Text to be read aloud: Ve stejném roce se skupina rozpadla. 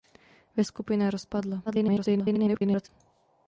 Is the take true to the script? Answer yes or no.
no